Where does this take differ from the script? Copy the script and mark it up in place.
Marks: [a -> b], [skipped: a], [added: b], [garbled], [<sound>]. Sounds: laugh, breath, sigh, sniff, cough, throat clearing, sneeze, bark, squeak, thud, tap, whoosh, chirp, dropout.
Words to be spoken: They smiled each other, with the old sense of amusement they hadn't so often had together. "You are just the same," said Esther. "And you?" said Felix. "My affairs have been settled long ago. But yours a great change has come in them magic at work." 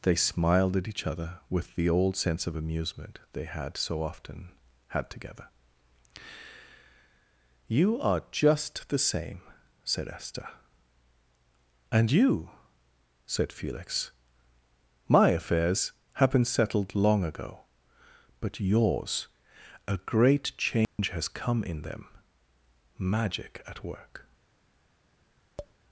They smiled [added: at] each other, with the old sense of amusement they [hadn't -> had] so often had together. "You are just the same," said Esther. "And you?" said Felix. "My affairs have been settled long ago. But yours a great change [dropout] has come in them magic at work." [tap]